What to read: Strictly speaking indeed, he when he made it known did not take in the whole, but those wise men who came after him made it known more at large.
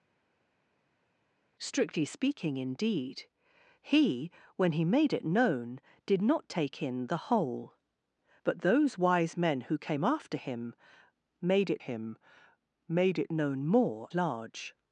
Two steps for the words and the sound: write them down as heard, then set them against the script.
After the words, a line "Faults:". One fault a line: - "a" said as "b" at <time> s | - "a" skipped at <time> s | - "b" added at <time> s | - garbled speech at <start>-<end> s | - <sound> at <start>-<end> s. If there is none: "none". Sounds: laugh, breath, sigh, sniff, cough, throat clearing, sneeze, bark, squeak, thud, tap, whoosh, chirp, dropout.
Strictly speaking indeed, he when he made it known did not take in the whole, but those wise men who came after him made it him made it known more large.
Faults:
- "him made it" added at 11.8 s
- "at" skipped at 14.1 s